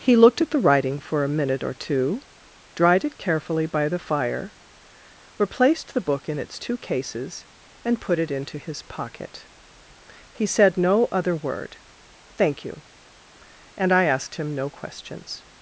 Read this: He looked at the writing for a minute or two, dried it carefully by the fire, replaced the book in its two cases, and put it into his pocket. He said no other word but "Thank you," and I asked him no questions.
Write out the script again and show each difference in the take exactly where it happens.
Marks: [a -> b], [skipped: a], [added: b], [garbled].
He looked at the writing for a minute or two, dried it carefully by the fire, replaced the book in its two cases, and put it into his pocket. He said no other word [skipped: but] "Thank you," and I asked him no questions.